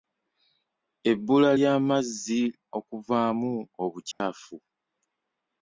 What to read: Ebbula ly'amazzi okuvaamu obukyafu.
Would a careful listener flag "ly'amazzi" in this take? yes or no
no